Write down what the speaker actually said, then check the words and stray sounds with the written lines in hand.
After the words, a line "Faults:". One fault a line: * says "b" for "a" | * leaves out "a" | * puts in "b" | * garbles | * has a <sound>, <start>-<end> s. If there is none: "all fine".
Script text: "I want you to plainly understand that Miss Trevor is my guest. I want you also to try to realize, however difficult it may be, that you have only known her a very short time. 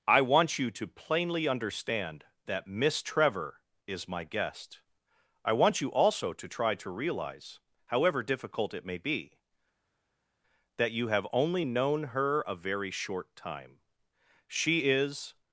"I want you to plainly understand that Miss Trevor is my guest. I want you also to try to realize, however difficult it may be, that you have only known her a very short time. She is
Faults:
* puts in "She is"